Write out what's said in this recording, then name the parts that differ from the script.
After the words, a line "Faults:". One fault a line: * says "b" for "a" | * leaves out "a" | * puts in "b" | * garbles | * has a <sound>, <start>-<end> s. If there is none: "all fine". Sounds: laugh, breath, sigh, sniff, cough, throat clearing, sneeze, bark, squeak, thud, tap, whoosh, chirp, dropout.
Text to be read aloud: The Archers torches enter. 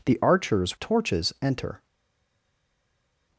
The Archers torches enter.
Faults:
all fine